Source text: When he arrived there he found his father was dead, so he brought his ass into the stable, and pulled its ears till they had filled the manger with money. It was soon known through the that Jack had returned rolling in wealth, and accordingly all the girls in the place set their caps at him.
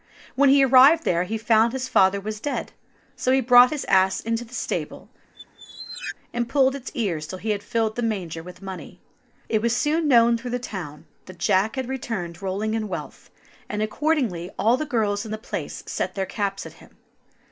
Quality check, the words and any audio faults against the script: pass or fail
fail